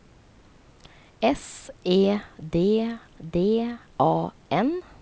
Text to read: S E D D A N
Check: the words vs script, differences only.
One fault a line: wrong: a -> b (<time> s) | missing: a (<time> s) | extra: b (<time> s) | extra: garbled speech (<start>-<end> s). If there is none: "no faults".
no faults